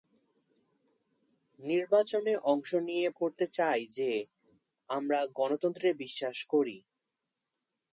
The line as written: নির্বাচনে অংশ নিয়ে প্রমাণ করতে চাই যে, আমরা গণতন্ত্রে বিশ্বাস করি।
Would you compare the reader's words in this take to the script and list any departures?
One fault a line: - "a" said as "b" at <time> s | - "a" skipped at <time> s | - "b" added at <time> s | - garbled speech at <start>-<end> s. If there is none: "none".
- "প্রমাণ" skipped at 3.1 s